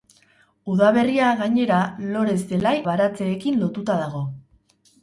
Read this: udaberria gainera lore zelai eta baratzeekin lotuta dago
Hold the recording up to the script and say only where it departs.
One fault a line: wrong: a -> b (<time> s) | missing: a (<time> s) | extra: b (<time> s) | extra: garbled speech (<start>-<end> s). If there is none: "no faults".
missing: eta (2.7 s)